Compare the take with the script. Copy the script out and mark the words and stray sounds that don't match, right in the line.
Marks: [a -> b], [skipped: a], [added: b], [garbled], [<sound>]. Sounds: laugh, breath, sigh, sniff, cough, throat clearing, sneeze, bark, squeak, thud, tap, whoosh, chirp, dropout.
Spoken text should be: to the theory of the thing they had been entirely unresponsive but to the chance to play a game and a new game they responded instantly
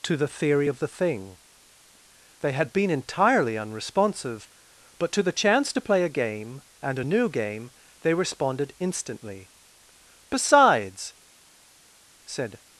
to the theory of the thing they had been entirely unresponsive but to the chance to play a game and a new game they responded instantly [added: besides said]